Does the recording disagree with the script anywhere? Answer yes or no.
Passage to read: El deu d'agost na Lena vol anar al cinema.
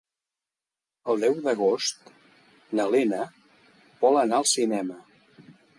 no